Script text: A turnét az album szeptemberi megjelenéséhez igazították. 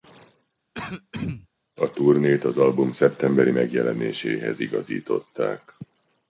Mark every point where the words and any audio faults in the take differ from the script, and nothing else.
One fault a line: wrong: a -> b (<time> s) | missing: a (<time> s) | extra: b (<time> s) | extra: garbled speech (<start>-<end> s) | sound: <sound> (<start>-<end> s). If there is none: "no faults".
sound: throat clearing (0.7-1.5 s)